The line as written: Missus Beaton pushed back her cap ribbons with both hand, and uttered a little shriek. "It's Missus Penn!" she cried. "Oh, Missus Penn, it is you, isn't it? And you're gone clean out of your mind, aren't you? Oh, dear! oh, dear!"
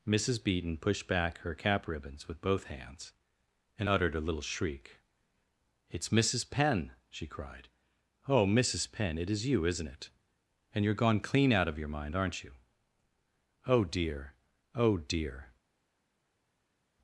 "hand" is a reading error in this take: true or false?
true